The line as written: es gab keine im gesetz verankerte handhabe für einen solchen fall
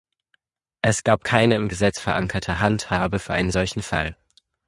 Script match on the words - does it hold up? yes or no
yes